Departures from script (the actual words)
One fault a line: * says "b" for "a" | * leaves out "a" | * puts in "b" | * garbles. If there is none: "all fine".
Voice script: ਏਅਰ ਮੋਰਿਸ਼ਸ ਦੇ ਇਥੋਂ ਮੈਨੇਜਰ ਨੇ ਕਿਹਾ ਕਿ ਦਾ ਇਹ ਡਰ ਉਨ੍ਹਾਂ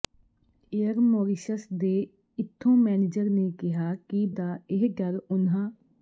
all fine